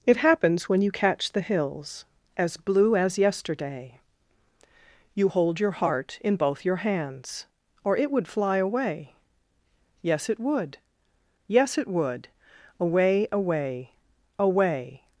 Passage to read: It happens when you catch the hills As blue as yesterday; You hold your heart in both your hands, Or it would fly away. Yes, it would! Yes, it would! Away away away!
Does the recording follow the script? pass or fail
pass